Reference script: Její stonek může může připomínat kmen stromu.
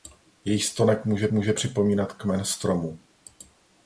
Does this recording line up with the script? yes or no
yes